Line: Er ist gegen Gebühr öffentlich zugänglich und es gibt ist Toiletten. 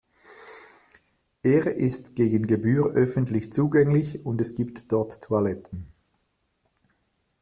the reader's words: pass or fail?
fail